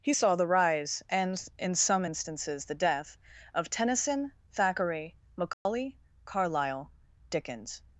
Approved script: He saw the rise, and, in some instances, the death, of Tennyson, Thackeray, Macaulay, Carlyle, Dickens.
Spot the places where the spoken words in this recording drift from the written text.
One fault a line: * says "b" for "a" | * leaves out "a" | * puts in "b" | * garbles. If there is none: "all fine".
all fine